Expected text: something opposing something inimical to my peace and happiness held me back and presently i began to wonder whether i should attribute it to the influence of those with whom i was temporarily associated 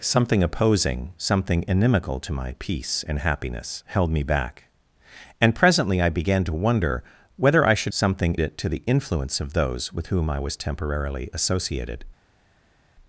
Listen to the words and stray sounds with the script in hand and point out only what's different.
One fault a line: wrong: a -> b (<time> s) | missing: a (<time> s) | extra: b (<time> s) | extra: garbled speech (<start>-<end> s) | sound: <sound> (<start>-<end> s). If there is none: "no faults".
wrong: attribute -> something (7.9 s)